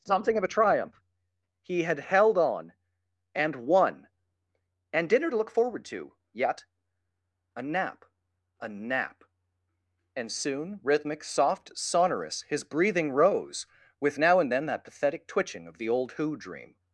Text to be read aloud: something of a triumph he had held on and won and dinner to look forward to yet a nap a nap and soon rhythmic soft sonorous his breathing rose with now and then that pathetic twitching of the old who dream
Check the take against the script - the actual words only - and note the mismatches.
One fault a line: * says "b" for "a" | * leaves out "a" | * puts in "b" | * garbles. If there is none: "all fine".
all fine